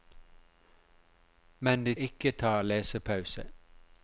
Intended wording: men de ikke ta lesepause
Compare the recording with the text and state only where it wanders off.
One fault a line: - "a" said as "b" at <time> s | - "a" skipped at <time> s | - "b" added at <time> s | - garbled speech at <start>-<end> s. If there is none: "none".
none